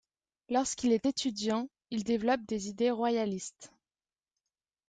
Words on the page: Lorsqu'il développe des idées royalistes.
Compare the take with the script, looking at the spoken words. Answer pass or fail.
fail